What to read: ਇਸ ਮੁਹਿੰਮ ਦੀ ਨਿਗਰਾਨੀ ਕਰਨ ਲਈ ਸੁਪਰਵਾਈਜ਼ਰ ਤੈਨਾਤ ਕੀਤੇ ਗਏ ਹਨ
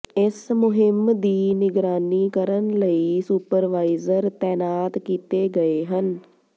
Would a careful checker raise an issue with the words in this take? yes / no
no